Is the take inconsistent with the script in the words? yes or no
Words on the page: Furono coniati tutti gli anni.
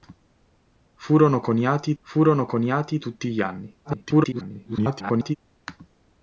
yes